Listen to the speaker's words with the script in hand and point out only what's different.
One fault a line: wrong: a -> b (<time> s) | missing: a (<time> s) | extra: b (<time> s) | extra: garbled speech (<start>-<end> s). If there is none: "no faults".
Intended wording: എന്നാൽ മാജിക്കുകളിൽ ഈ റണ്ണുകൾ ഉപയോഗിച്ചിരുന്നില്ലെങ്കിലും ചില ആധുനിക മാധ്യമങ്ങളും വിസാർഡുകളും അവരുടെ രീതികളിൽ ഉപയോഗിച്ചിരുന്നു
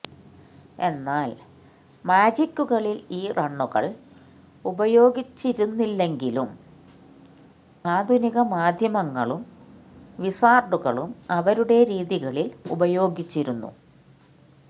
missing: ചില (6.5 s)